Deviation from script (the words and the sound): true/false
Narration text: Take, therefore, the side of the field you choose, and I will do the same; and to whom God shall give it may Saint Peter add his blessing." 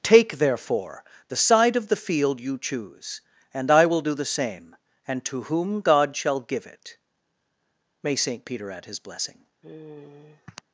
true